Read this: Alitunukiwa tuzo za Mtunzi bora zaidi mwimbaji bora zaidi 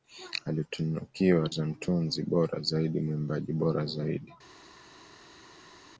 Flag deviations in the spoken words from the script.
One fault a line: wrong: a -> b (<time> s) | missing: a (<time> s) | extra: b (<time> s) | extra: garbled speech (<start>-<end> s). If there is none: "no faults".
missing: tuzo (1.5 s)